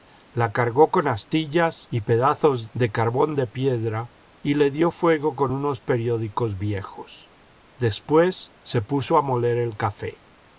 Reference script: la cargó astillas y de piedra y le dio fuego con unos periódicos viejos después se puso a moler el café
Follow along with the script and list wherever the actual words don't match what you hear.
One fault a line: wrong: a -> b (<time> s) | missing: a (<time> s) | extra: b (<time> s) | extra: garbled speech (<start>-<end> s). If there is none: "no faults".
extra: con (0.9 s)
extra: pedazos de carbón (2.0 s)